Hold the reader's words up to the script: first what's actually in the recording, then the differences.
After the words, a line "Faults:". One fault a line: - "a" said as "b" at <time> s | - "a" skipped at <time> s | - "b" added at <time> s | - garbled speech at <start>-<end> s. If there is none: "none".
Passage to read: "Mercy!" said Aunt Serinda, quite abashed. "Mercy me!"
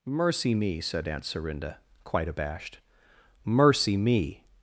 "Mercy me!" said Aunt Serinda, quite abashed. "Mercy me!"
Faults:
- "me" added at 0.6 s